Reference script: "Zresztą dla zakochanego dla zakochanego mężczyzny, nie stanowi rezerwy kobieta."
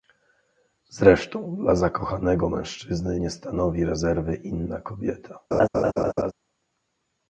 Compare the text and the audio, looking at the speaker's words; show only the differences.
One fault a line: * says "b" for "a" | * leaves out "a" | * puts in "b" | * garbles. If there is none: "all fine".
* leaves out "dla zakochanego"
* puts in "inna"